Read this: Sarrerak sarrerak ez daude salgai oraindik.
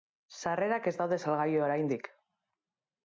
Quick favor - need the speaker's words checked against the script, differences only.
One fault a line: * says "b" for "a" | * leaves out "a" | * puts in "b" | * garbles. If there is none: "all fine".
* leaves out "sarrerak"